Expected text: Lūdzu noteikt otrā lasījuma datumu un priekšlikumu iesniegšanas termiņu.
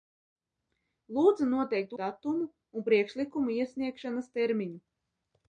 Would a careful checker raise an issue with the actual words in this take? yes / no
yes